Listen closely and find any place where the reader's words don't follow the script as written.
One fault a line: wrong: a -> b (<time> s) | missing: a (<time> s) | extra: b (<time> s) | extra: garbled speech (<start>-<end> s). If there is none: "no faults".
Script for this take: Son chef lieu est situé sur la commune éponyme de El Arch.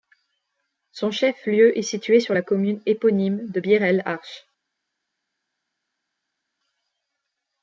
extra: Bir (3.6 s)